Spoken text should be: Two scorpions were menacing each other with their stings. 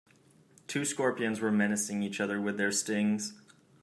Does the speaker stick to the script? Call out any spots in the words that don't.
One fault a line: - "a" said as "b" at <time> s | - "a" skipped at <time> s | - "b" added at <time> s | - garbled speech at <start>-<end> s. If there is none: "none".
none